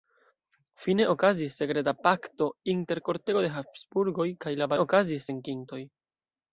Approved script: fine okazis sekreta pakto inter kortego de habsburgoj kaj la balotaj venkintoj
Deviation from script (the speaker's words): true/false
true